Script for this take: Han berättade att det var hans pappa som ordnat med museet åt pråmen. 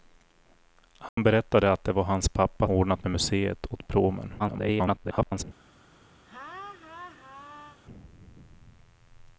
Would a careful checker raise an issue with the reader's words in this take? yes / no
yes